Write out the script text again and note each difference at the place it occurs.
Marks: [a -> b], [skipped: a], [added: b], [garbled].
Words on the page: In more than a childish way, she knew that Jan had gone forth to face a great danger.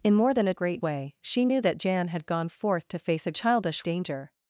In more than a [childish -> great] way, she knew that Jan had gone forth to face a [great -> childish] danger.